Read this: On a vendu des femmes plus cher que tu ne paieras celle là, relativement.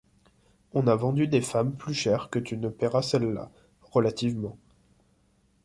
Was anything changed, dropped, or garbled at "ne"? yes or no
no